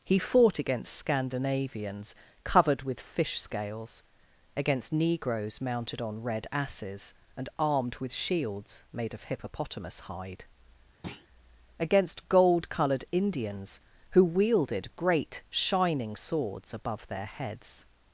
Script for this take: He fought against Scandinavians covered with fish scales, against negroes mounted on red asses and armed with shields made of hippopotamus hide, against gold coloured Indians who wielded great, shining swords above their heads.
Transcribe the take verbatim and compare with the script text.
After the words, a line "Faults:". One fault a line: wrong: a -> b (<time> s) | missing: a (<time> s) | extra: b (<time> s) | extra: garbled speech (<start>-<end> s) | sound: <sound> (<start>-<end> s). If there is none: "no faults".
He fought against Scandinavians covered with fish scales, against negroes mounted on red asses and armed with shields made of hippopotamus hide, against gold coloured Indians who wielded great, shining swords above their heads.
Faults:
sound: thud (11.0-11.3 s)